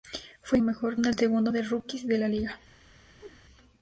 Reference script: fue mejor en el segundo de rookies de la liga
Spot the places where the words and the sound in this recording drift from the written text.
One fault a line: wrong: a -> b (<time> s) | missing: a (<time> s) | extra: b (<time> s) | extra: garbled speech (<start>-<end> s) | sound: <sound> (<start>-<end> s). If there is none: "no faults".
sound: whoosh (3.2-3.4 s)